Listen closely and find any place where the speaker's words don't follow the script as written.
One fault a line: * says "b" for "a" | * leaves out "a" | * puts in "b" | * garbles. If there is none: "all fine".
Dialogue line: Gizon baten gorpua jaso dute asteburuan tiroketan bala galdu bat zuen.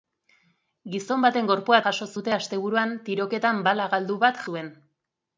all fine